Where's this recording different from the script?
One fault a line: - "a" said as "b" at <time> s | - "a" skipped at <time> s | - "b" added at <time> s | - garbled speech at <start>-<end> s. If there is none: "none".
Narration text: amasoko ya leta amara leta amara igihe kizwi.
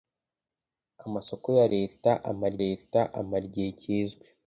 none